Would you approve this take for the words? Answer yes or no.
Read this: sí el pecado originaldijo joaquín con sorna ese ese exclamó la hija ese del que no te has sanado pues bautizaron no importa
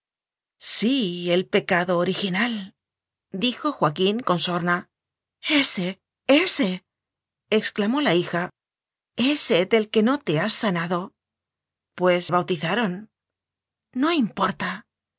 yes